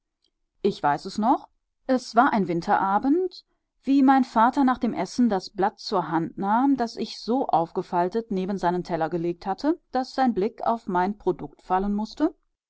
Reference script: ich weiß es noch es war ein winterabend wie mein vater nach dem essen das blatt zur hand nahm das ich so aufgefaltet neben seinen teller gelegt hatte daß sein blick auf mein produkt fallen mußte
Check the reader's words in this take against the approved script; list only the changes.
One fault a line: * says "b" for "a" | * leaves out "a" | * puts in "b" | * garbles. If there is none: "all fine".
all fine